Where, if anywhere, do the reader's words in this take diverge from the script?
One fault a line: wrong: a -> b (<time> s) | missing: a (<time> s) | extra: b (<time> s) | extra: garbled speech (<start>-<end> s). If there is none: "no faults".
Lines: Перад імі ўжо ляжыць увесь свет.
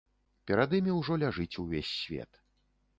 no faults